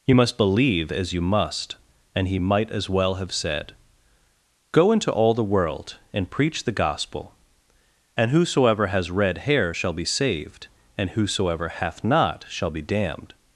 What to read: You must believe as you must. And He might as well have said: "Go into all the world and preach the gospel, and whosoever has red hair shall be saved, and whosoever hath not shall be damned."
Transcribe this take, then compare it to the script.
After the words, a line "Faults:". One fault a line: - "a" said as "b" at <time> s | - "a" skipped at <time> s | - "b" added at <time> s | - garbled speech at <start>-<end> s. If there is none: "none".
You must believe as you must. And He might as well have said: "Go into all the world and preach the gospel, and whosoever has red hair shall be saved, and whosoever hath not shall be damned."
Faults:
none